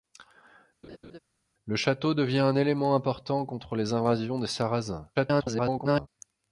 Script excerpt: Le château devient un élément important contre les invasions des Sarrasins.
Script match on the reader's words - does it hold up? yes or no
no